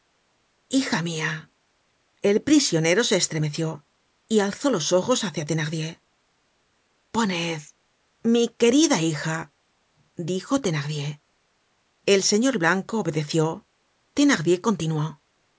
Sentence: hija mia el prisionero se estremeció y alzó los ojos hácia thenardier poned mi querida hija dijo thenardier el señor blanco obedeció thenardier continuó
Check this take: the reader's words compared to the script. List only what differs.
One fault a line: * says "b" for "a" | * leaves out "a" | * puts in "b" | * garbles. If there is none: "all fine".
all fine